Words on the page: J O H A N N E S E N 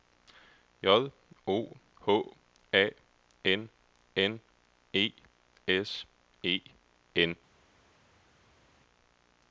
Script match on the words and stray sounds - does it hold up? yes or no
yes